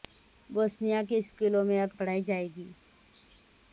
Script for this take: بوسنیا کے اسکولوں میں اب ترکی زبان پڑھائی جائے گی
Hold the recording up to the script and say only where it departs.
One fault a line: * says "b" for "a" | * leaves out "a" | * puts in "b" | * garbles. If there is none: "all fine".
* leaves out "ترکی زبان"